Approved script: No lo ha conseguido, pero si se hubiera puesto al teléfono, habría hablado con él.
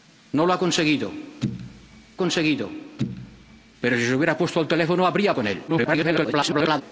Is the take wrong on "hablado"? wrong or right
wrong